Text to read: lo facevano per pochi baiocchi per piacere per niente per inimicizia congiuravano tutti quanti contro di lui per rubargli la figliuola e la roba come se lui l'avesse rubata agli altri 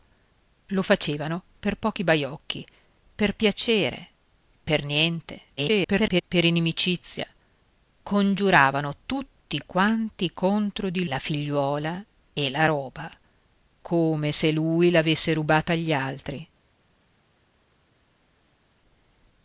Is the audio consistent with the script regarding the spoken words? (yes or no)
no